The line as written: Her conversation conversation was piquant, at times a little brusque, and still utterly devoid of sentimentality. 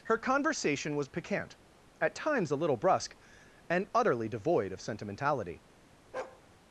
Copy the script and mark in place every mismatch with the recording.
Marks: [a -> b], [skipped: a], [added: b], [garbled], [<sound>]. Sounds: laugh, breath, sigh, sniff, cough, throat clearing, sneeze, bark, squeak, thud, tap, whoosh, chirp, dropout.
Her conversation [skipped: conversation] was piquant, at times a little brusque, and [skipped: still] utterly devoid of sentimentality. [bark]